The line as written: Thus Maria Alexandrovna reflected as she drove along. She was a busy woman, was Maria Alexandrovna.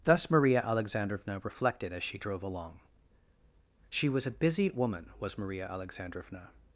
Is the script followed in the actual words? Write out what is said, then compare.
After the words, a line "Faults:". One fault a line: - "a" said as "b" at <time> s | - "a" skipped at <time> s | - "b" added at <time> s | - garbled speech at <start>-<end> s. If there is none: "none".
Thus Maria Alexandrovna reflected as she drove along. She was a busy woman, was Maria Alexandrovna.
Faults:
none